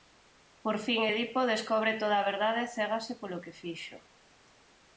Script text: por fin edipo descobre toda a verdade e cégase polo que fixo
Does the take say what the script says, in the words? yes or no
yes